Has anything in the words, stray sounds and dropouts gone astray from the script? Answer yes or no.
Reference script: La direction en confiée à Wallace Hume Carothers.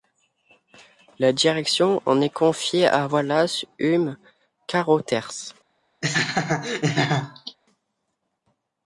yes